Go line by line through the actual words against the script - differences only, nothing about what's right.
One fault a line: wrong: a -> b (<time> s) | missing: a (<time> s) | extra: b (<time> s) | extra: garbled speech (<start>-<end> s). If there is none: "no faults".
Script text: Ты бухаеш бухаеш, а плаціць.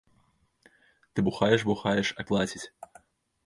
no faults